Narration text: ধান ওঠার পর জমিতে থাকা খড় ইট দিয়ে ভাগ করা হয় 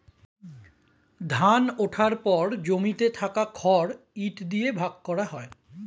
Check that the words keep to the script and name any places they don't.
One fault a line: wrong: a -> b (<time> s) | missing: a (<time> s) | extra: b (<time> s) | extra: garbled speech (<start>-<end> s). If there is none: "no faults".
no faults